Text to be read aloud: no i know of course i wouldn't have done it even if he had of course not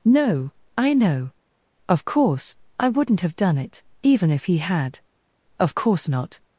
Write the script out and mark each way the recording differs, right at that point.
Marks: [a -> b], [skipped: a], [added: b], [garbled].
no i know of course i wouldn't have done it even if he had of course not